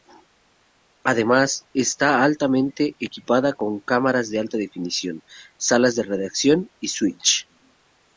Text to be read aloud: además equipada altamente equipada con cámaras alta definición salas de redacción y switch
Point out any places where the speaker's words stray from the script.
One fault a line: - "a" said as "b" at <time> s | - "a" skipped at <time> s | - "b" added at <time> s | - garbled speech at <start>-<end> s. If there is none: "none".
- "equipada" said as "está" at 1.7 s
- "de" added at 4.3 s